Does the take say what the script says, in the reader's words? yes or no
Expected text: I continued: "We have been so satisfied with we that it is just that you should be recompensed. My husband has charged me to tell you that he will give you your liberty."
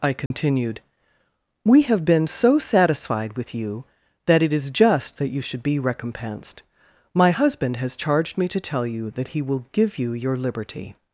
no